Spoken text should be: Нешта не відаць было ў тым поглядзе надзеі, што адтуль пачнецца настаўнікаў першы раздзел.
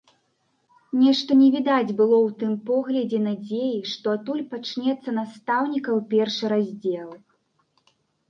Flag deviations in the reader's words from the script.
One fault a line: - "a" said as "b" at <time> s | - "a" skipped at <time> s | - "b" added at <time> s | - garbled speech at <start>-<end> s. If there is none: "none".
none